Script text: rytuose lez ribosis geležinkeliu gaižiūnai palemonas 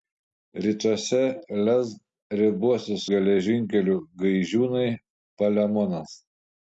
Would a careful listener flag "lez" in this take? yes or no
no